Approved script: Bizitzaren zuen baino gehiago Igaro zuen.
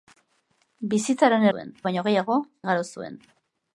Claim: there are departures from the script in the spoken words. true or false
false